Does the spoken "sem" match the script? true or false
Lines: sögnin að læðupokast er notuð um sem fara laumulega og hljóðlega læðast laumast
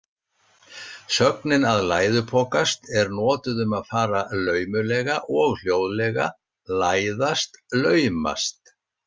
false